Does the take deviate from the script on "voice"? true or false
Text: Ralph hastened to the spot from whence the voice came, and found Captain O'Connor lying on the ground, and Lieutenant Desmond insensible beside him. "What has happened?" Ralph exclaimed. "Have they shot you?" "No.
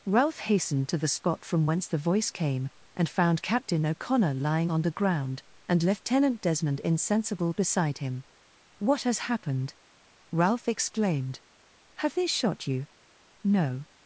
false